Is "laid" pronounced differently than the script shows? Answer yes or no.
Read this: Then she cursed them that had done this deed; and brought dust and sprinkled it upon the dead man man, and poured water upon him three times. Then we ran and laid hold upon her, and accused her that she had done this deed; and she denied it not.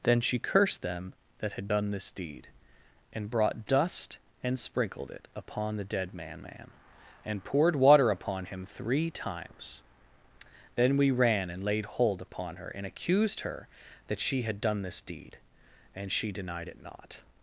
no